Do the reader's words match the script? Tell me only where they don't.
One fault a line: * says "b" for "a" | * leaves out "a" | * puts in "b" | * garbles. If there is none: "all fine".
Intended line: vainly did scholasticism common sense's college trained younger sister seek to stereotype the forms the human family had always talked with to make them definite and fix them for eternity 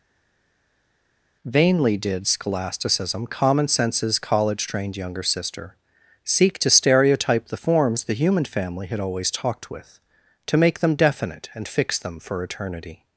all fine